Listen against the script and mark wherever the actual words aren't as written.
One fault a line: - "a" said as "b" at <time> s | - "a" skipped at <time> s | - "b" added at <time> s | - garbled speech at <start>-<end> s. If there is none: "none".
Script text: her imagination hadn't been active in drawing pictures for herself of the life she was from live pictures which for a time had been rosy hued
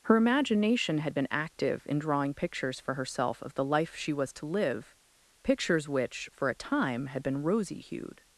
- "hadn't" said as "had" at 1.0 s
- "from" said as "to" at 4.3 s